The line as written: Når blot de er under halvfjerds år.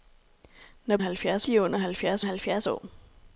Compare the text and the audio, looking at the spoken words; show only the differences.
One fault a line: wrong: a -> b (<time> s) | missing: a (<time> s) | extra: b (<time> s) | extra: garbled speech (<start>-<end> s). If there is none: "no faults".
wrong: blot -> halvfjerds (1.0 s)
extra: halvfjerds (2.2 s)